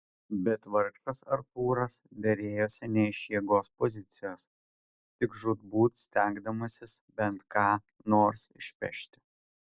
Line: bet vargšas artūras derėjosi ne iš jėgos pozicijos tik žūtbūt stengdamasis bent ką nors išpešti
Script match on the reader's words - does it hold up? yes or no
yes